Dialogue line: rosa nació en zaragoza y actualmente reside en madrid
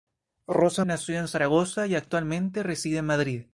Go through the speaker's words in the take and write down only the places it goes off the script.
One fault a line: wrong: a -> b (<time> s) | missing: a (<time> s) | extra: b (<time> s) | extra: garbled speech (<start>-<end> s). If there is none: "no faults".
no faults